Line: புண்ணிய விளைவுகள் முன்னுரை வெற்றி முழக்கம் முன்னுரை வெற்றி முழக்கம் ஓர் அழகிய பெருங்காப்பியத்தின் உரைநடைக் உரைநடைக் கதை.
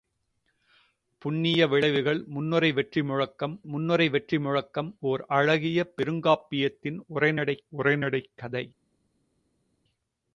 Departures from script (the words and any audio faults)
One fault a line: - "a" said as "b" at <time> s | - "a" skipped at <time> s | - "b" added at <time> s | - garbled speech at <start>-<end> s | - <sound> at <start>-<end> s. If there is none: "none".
none